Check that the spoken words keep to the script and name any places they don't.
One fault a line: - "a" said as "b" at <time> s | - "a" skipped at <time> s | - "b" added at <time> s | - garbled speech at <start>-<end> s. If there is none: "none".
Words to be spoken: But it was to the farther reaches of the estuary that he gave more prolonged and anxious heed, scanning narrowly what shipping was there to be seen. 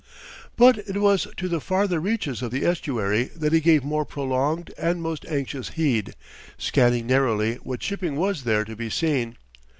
- "most" added at 5.0 s